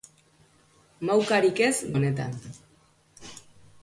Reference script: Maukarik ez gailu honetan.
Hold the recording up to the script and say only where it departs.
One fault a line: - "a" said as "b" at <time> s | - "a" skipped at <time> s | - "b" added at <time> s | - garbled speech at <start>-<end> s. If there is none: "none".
- "gailu" skipped at 1.8 s